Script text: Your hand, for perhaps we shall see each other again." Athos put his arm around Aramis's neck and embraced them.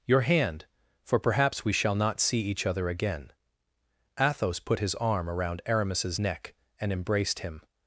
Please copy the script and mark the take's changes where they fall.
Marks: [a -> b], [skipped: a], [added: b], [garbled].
Your hand, for perhaps we shall [added: not] see each other again." Athos put his arm around Aramis's neck and embraced [them. -> him]